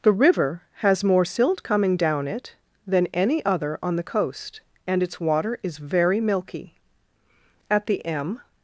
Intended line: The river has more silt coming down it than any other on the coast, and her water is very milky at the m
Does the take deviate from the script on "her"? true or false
true